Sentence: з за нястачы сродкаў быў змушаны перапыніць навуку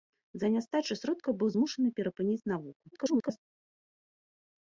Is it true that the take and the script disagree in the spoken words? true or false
true